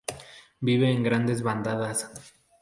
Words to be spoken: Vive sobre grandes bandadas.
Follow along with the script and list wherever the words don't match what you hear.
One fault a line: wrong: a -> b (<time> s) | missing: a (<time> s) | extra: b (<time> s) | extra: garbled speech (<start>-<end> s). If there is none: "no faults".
wrong: sobre -> en (0.9 s)